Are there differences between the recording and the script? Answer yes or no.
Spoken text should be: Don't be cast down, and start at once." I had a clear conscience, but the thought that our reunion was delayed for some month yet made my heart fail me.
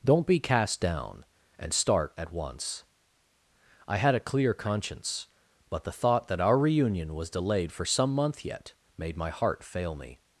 no